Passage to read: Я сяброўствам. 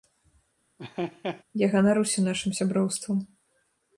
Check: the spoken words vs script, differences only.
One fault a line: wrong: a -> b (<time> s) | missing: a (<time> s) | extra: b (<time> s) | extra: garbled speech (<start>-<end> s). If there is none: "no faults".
extra: ганаруся нашым (1.7 s)